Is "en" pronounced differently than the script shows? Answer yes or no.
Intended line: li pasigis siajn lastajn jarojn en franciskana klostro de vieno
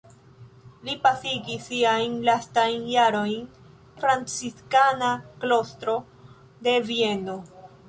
yes